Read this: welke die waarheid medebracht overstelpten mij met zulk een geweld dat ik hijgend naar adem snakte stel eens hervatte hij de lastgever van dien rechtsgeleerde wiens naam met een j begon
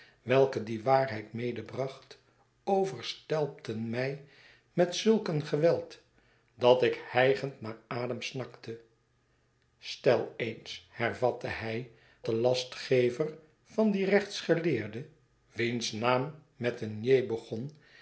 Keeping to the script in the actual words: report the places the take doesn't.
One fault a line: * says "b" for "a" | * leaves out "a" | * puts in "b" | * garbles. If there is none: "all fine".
all fine